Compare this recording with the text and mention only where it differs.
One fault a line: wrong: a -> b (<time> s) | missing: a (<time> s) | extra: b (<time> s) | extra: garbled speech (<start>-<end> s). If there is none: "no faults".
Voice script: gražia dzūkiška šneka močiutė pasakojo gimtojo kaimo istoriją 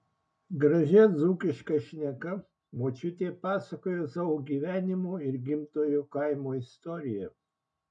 extra: savo gyvenimo ir (4.1 s)